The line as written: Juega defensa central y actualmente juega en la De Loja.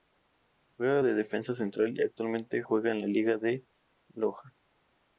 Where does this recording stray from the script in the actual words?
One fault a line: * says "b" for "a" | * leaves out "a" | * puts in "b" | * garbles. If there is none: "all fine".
* puts in "de"
* puts in "Liga"